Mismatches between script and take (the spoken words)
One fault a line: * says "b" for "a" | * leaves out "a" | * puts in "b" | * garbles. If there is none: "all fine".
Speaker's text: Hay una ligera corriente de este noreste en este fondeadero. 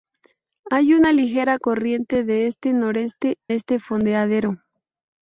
* leaves out "en"